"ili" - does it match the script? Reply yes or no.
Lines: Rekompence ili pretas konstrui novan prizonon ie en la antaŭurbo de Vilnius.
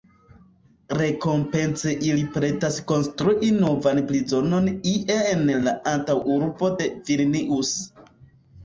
yes